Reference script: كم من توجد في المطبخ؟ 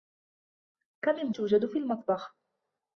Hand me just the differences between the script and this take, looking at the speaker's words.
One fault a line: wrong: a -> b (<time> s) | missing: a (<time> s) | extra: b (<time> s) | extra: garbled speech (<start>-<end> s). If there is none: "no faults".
no faults